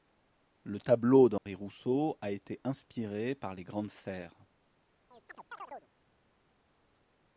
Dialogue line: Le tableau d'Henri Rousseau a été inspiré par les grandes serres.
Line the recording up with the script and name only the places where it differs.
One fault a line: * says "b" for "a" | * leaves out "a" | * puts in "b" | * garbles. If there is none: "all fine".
all fine